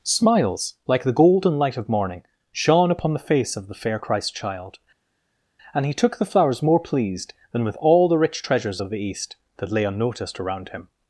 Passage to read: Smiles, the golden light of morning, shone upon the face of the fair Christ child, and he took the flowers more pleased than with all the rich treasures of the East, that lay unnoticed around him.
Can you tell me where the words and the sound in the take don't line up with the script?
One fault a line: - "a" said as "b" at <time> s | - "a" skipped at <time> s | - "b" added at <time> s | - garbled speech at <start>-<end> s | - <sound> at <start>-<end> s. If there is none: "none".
- "like" added at 0.9 s